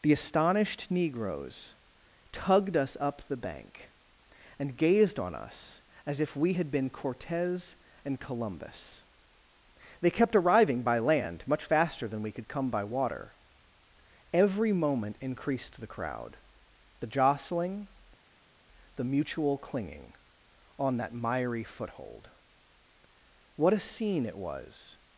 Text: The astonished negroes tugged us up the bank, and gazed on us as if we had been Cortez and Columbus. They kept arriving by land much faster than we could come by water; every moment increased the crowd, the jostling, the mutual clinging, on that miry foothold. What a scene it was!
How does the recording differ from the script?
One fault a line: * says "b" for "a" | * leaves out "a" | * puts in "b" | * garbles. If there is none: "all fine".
all fine